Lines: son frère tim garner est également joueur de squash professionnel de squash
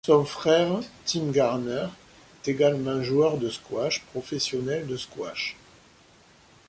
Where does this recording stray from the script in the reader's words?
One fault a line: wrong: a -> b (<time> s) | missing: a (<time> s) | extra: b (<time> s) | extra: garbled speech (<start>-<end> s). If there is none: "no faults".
missing: est (1.9 s)